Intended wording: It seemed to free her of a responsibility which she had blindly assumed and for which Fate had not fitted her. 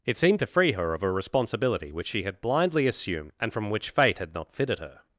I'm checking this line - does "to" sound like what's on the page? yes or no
yes